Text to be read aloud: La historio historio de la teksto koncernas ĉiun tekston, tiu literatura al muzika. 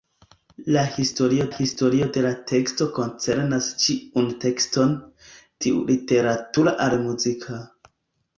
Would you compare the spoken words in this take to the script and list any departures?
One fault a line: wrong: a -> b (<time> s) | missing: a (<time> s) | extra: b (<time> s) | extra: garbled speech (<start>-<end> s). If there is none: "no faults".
no faults